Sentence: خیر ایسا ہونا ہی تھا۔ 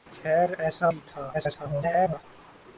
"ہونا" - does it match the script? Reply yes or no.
no